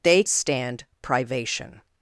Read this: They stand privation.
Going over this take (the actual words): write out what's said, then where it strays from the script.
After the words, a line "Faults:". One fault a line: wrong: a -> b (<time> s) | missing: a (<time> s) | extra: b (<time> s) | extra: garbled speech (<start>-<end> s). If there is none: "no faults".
They stand privation.
Faults:
no faults